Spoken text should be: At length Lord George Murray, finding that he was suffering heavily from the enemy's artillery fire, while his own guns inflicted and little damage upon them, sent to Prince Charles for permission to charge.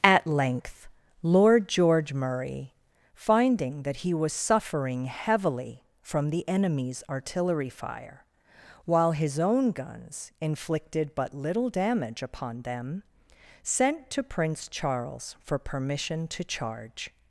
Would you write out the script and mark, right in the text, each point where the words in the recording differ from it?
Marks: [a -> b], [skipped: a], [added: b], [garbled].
At length Lord George Murray, finding that he was suffering heavily from the enemy's artillery fire, while his own guns inflicted [and -> but] little damage upon them, sent to Prince Charles for permission to charge.